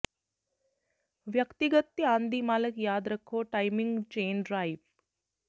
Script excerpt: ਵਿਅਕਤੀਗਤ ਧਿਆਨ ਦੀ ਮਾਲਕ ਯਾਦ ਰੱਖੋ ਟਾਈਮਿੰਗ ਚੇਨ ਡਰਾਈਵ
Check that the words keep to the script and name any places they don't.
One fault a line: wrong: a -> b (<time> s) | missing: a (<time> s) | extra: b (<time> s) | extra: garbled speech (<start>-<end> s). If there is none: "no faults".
no faults